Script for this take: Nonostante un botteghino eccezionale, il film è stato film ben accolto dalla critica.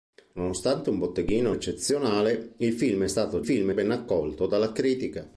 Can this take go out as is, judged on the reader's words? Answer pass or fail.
pass